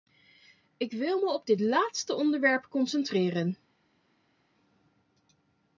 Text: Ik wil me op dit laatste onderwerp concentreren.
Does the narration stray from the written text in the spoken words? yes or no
no